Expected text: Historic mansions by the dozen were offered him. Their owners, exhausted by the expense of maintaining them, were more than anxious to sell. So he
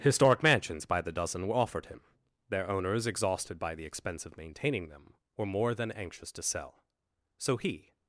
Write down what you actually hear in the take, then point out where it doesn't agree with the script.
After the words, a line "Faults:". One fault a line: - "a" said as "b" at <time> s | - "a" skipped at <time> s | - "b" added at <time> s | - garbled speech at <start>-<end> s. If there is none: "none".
Historic mansions by the dozen were offered him. Their owners, exhausted by the expense of maintaining them, were more than anxious to sell. So he
Faults:
none